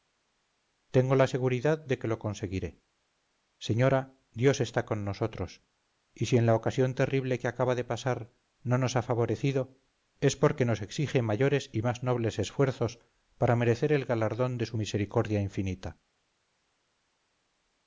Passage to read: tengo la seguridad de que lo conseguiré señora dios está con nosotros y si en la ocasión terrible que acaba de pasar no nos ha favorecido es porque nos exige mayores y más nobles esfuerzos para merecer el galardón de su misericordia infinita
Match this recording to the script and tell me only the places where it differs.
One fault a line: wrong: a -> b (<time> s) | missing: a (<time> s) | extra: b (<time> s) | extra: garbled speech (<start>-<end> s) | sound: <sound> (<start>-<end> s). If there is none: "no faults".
no faults